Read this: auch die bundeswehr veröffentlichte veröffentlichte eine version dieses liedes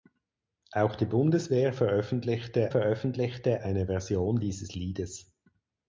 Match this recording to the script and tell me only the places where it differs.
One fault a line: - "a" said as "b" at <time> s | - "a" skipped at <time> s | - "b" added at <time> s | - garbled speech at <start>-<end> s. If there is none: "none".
none